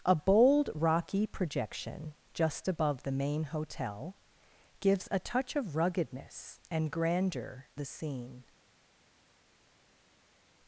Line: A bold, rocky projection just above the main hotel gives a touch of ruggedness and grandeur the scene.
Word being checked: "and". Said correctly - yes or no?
yes